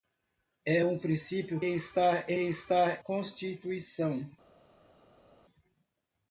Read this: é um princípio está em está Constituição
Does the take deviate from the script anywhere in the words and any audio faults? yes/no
no